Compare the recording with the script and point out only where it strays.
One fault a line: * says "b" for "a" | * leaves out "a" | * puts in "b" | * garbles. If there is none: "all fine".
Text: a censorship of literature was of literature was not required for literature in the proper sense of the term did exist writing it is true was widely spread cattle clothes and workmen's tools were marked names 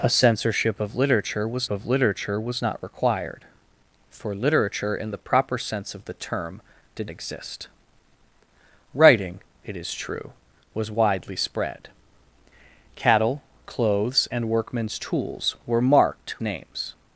all fine